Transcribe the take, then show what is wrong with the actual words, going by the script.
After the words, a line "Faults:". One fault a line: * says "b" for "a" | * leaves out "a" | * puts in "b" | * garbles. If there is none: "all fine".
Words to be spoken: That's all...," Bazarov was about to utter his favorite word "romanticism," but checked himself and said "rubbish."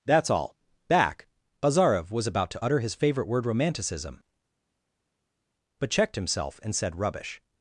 That's all...," back Bazarov was about to utter his favorite word "romanticism," but checked himself and said "rubbish."
Faults:
* puts in "back"